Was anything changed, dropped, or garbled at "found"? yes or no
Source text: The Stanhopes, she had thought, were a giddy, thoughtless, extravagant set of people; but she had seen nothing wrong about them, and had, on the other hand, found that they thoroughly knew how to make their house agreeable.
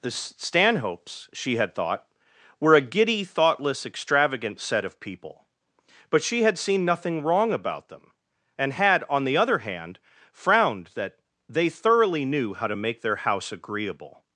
yes